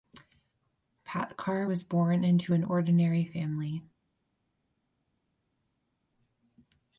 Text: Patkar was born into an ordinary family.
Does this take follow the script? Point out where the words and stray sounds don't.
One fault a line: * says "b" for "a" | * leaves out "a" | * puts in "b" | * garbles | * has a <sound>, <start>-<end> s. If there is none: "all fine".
all fine